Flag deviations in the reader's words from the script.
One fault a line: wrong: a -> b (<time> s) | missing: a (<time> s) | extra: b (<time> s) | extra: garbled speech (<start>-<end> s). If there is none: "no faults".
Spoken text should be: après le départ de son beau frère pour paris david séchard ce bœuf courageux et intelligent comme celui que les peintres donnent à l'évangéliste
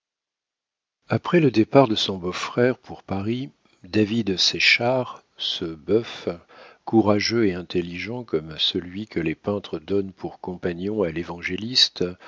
extra: pour compagnon (10.1 s)